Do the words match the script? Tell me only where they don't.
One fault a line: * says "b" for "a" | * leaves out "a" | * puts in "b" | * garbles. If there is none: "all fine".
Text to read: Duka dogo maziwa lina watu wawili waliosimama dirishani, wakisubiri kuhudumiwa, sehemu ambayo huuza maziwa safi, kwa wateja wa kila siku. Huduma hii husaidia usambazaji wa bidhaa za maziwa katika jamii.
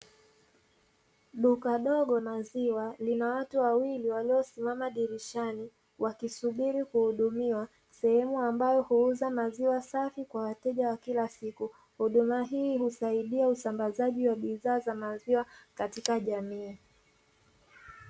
all fine